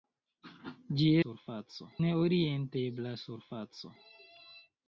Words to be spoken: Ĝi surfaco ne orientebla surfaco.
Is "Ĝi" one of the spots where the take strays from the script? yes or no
no